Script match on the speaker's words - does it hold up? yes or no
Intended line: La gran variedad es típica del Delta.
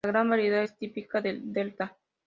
yes